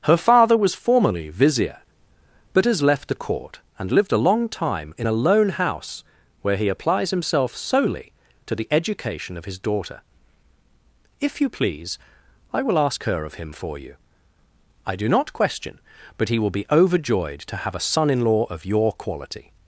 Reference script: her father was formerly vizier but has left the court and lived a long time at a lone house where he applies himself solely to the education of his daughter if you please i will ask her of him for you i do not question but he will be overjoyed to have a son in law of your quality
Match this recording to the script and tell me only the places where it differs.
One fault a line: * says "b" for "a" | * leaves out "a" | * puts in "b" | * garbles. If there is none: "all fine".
* says "in" for "at"